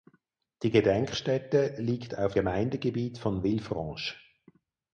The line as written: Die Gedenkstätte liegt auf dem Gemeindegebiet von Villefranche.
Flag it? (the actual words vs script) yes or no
yes